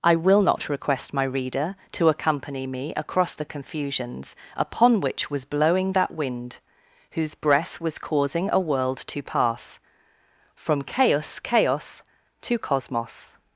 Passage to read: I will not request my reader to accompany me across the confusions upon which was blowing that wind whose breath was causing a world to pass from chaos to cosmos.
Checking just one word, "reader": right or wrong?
right